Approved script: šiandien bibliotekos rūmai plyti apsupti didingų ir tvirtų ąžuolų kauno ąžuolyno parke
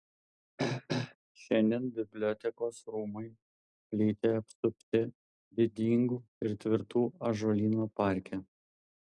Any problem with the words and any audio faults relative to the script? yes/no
yes